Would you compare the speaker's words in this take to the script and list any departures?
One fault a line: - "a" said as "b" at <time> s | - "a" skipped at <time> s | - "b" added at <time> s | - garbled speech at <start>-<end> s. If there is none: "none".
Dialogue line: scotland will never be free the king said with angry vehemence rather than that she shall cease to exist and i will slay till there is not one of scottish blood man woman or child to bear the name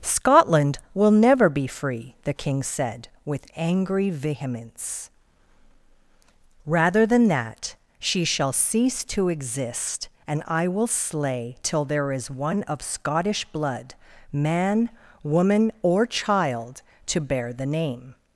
- "not" skipped at 12.3 s